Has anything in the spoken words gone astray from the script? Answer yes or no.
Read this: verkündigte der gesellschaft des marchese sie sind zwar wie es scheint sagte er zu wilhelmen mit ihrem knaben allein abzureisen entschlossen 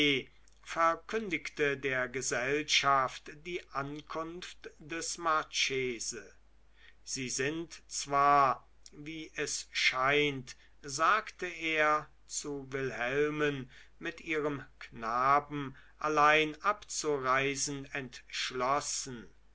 yes